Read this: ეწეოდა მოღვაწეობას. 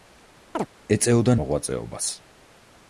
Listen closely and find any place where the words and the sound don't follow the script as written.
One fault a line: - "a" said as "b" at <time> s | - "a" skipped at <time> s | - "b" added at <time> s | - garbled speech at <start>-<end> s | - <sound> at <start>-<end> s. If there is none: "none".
- chirp at 0.5-0.7 s